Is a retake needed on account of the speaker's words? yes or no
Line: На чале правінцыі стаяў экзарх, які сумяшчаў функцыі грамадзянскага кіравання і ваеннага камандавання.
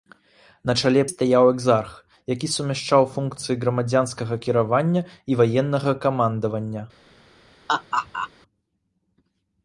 yes